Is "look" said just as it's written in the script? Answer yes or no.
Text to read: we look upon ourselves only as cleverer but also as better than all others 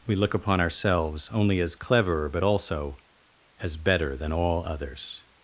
yes